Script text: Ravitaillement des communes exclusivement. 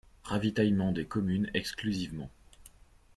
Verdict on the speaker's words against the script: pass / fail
pass